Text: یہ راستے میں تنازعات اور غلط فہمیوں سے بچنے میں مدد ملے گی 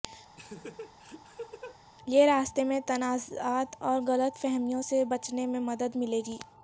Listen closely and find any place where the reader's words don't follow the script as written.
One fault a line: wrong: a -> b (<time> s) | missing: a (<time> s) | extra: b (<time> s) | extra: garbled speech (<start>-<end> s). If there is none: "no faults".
no faults